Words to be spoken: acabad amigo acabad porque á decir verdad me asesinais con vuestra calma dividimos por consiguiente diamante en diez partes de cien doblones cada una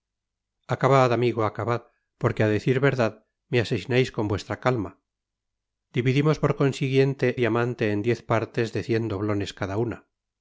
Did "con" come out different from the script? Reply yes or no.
no